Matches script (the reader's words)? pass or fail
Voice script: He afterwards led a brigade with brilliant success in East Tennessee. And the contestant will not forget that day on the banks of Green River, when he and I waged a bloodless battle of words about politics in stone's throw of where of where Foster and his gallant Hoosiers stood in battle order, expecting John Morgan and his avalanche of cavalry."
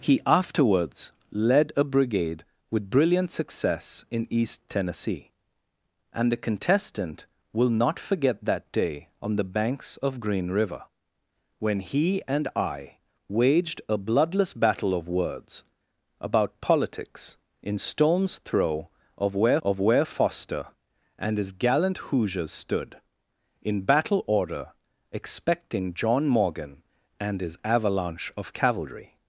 pass